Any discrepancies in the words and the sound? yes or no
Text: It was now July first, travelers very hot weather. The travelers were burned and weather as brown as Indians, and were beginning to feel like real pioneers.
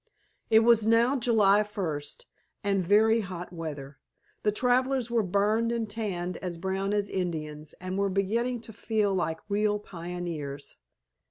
yes